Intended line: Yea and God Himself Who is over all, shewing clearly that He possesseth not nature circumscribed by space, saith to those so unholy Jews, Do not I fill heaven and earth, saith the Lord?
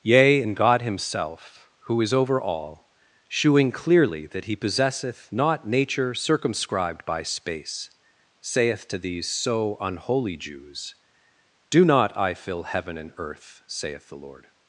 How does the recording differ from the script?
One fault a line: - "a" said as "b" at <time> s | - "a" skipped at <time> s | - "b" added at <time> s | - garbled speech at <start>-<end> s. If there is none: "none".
- "those" said as "these" at 9.0 s